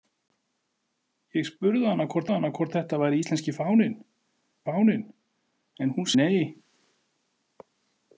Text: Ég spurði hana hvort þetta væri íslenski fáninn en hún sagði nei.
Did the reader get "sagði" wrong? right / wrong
wrong